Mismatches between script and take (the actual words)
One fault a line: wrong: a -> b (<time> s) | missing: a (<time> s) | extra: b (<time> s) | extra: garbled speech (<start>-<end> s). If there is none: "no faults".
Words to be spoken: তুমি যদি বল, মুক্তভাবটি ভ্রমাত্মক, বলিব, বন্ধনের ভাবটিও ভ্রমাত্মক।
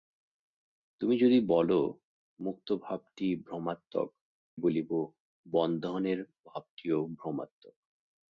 no faults